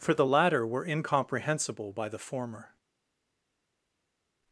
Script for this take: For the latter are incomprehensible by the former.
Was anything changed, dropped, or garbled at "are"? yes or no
yes